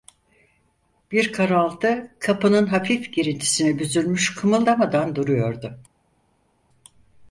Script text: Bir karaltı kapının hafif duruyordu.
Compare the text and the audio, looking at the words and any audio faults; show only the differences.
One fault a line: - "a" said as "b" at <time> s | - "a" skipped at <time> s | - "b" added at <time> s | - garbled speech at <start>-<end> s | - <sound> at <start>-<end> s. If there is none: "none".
- "girintisine büzülmüş kımıldamadan" added at 3.1 s